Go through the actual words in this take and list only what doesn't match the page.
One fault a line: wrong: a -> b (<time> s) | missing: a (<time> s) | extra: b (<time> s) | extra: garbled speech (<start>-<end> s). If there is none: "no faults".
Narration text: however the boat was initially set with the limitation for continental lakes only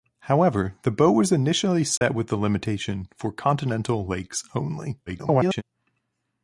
extra: garbled speech (5.1-5.6 s)